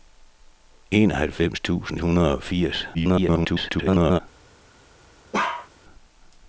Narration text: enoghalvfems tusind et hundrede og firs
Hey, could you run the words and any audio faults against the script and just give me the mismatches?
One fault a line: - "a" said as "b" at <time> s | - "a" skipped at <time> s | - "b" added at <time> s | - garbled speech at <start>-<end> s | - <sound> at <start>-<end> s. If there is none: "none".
- "et" skipped at 2.0 s
- garbled speech at 2.9-4.2 s
- bark at 5.3-5.7 s